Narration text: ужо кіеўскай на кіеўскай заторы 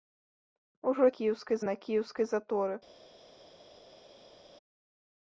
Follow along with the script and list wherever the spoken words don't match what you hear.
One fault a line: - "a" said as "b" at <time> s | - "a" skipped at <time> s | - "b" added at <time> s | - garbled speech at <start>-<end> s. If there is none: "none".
none